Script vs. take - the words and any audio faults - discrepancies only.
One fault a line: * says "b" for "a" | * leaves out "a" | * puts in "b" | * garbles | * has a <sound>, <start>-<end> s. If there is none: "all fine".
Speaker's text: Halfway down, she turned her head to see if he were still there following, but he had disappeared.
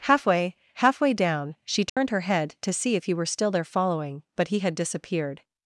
* puts in "halfway"
* has a dropout, 1.9-2.0 s